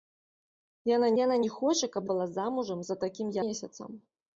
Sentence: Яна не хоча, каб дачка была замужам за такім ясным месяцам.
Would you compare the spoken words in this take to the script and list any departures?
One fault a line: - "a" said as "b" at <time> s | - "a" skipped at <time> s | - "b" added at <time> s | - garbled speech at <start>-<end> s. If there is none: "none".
- "яна" added at 1.2 s
- "дачка" skipped at 2.1 s
- "ясным" skipped at 3.4 s